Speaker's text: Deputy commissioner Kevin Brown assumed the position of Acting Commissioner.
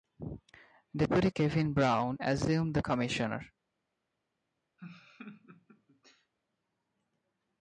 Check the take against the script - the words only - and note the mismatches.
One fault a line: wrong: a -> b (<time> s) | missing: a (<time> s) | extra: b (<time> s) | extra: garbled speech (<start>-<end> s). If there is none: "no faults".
missing: commissioner (1.3 s)
missing: position of Acting (2.8 s)